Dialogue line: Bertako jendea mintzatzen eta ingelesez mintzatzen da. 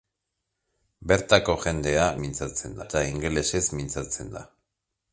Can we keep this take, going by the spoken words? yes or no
yes